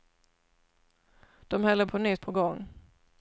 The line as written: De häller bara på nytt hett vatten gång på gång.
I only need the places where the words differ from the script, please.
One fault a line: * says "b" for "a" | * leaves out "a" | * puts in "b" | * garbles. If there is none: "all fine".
* leaves out "bara"
* leaves out "hett vatten gång"